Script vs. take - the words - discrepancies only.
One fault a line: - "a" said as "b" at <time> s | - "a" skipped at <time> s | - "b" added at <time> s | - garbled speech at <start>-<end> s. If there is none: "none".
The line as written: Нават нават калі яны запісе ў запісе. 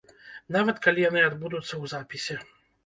- "нават" skipped at 0.8 s
- "запісе" said as "адбудуцца" at 1.3 s